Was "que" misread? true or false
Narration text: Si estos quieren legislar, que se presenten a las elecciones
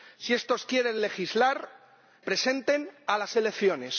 true